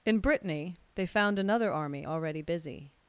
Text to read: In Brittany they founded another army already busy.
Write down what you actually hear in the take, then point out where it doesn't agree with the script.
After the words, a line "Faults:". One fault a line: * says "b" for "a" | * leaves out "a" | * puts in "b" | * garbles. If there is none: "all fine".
In Brittany they found another army already busy.
Faults:
* says "found" for "founded"